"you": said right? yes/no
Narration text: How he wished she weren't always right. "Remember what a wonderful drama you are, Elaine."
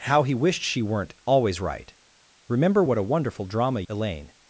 no